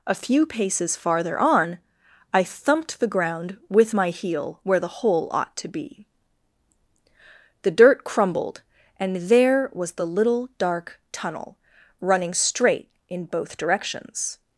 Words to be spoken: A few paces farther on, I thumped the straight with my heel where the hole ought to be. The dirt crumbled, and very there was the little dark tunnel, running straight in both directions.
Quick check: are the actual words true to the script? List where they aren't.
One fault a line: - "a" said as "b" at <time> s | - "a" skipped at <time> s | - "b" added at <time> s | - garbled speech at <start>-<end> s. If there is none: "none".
- "straight" said as "ground" at 3.1 s
- "very" skipped at 9.2 s